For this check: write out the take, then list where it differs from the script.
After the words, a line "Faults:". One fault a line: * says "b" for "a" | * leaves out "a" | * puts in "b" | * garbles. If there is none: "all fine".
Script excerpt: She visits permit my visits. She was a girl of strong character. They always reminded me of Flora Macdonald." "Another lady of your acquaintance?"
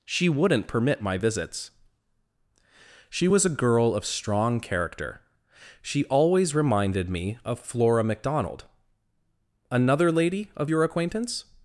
She wouldn't permit my visits. She was a girl of strong character. She always reminded me of Flora Macdonald." "Another lady of your acquaintance?"
Faults:
* says "wouldn't" for "visits"
* says "She" for "They"